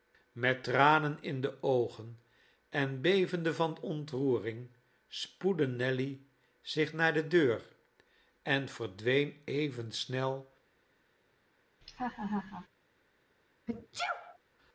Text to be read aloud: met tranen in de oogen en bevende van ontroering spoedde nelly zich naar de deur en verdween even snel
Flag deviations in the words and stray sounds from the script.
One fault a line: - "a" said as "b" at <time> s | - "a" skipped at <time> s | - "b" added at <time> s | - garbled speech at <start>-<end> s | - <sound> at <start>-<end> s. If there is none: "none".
- laugh at 11.8-12.7 s
- sneeze at 13.7-14.4 s